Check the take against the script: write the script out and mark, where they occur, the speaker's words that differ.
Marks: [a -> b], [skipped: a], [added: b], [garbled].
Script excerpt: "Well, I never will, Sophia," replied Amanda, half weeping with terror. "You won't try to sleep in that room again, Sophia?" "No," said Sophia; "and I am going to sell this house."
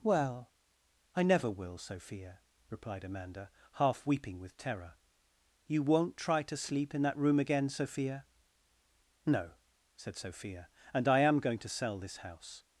"Well, I never will, Sophia," replied Amanda, half weeping with terror. "You won't try to sleep in that room again, Sophia?" "No," said Sophia; "and I am going to sell this house."